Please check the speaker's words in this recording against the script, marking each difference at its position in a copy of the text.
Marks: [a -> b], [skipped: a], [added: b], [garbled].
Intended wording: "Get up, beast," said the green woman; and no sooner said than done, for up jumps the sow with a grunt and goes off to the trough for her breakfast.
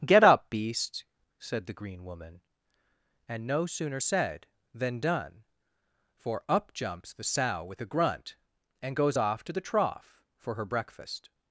"Get up, beast," said the green woman; and no sooner said than done, for up jumps the sow with a grunt and goes off to the trough for her breakfast.